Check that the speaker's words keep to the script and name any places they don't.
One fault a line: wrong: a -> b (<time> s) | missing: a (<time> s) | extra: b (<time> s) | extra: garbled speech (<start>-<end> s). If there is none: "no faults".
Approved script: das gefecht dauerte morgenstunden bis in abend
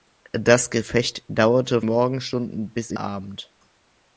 no faults